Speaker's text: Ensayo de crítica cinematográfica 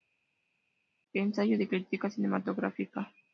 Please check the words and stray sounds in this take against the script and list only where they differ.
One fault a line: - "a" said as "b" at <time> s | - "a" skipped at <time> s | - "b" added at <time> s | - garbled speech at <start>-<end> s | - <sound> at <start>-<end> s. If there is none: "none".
none